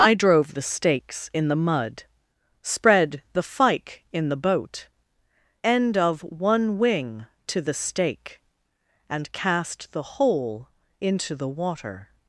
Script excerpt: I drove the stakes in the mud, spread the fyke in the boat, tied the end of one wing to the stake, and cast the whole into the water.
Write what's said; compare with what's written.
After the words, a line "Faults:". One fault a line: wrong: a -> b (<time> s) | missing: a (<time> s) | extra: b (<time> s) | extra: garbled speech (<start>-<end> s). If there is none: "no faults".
I drove the stakes in the mud, spread the fyke in the boat, end of one wing to the stake, and cast the whole into the water.
Faults:
missing: tied the (4.9 s)